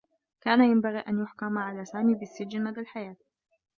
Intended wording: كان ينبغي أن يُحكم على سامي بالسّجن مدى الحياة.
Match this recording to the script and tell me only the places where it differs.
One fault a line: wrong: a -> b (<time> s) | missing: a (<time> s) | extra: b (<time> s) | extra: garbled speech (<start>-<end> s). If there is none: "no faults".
no faults